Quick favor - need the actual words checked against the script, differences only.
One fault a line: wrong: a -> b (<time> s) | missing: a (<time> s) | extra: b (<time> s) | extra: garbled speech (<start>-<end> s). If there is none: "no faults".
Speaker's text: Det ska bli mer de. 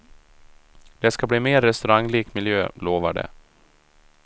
extra: restauranglik miljö lovar (1.6 s)